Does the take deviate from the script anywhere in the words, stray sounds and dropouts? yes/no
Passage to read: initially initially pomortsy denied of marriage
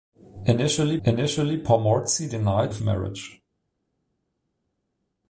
no